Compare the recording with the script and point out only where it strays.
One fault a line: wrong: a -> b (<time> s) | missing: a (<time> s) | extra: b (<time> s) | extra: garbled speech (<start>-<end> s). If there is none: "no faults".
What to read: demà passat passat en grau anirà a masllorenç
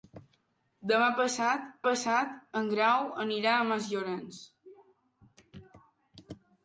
no faults